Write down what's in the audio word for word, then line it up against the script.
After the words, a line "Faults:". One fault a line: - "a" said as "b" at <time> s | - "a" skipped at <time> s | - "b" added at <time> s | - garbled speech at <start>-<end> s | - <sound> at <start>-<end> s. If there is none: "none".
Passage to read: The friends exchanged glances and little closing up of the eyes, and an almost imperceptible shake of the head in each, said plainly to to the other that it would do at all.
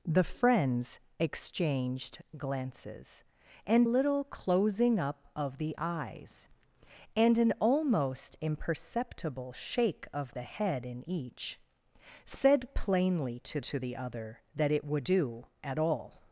The friends exchanged glances and little closing up of the eyes, and an almost imperceptible shake of the head in each, said plainly to to the other that it would do at all.
Faults:
none